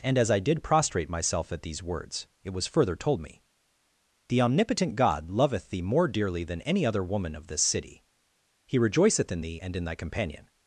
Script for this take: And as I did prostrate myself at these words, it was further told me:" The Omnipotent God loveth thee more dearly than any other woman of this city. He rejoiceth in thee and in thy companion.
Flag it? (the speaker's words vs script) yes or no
no